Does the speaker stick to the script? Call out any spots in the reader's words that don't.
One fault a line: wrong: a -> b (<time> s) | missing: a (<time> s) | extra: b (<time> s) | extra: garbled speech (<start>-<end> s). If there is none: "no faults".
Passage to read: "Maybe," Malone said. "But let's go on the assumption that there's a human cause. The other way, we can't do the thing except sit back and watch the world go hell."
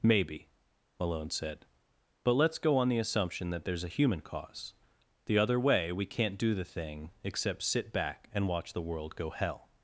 no faults